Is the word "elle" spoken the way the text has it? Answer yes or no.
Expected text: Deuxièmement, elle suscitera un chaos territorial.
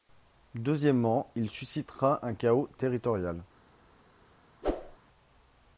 no